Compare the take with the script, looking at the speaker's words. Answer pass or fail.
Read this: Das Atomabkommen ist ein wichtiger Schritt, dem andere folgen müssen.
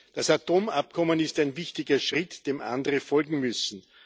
pass